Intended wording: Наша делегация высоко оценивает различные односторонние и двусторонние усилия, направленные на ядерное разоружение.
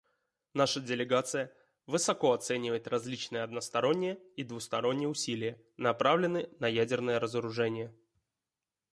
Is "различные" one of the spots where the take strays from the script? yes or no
no